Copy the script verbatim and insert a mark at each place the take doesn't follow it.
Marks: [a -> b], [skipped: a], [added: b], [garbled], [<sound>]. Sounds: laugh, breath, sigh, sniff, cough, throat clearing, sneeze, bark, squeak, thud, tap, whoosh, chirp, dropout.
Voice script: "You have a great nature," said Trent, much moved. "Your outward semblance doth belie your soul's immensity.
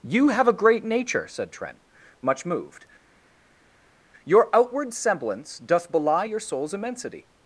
"You have a great nature," said Trent, much moved. "Your outward semblance doth belie your soul's immensity.